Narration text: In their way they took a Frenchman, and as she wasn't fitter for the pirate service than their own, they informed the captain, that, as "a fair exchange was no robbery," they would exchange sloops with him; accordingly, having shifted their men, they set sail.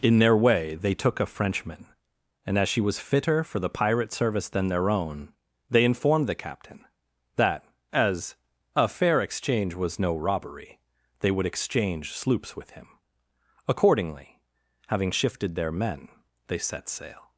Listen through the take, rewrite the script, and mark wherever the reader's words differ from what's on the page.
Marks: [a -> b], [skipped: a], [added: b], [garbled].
In their way they took a Frenchman, and as she [wasn't -> was] fitter for the pirate service than their own, they informed the captain, that, as "a fair exchange was no robbery," they would exchange sloops with him; accordingly, having shifted their men, they set sail.